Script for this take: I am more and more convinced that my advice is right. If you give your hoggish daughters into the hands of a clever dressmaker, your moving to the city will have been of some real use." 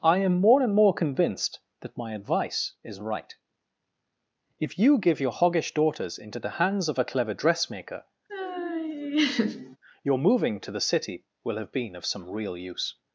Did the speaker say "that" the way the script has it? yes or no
yes